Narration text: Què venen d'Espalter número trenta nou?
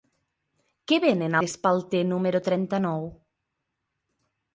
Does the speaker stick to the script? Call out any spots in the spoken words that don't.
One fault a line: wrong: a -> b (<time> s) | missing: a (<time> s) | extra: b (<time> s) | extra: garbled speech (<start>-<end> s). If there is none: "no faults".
no faults